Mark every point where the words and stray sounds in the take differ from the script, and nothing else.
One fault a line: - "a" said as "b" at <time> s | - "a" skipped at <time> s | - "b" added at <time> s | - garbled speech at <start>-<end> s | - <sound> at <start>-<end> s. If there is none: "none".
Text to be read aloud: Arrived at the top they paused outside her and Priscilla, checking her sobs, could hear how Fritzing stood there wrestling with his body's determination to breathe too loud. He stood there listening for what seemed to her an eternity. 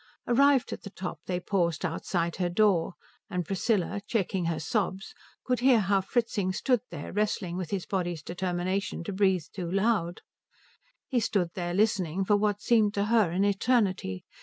- "door" added at 2.5 s